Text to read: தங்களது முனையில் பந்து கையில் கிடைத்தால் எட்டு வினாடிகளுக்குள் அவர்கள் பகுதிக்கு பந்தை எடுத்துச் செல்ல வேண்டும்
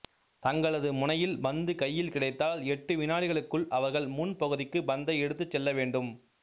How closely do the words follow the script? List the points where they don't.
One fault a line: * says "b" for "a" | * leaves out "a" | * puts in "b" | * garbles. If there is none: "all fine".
* puts in "முன்"